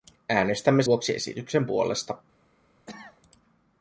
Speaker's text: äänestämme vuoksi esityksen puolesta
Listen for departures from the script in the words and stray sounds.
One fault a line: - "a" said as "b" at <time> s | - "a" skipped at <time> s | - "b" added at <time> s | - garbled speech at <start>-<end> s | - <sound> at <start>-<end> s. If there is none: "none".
- cough at 2.9-3.2 s